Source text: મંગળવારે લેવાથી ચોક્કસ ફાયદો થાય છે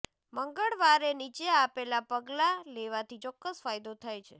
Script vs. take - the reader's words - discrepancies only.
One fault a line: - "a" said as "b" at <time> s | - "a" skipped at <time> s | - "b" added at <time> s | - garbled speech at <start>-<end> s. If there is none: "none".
- "નીચે આપેલા પગલાં" added at 1.1 s